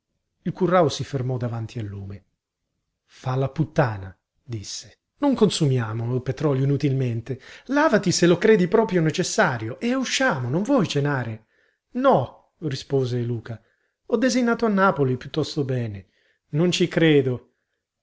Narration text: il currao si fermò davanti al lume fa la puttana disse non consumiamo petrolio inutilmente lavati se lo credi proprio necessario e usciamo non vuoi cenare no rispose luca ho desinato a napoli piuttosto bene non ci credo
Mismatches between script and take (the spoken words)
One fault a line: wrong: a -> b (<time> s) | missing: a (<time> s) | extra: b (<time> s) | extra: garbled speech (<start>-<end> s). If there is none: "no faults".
no faults